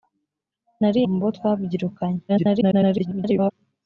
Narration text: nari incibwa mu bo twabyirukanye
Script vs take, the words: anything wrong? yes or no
yes